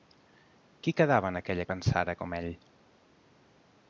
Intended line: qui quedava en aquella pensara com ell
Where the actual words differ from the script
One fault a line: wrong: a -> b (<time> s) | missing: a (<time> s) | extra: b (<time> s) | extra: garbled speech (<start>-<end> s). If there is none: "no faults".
no faults